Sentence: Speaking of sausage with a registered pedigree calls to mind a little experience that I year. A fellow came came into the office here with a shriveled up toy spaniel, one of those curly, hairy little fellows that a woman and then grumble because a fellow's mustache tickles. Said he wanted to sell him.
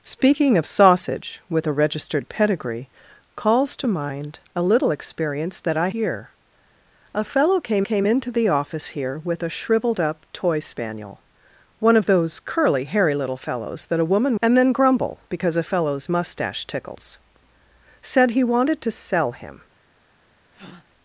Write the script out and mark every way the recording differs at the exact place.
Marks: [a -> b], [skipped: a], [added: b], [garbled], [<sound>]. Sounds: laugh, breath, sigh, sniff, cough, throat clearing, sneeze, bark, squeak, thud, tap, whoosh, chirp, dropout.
Speaking of sausage with a registered pedigree calls to mind a little experience that I year. A fellow came came into the office here with a shriveled up toy spaniel, one of those curly, hairy little fellows that a woman and then grumble because a fellow's mustache tickles. Said he wanted to sell him. [breath]